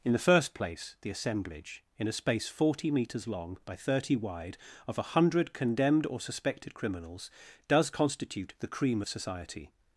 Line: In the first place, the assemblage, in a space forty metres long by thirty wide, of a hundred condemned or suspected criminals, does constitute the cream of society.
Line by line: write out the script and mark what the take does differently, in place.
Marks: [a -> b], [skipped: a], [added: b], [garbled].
In the first place, the assemblage, in a space forty metres long by thirty wide, of a hundred condemned or suspected criminals, does constitute the cream of society.